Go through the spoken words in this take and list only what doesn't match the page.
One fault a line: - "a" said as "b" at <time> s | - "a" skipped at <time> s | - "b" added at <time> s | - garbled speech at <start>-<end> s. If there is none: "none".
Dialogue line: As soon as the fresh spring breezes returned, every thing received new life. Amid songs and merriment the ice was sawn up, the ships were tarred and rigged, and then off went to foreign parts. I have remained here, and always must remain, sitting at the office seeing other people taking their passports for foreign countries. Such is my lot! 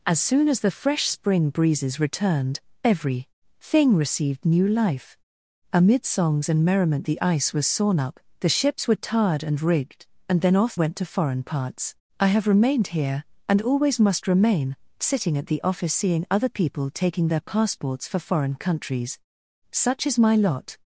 none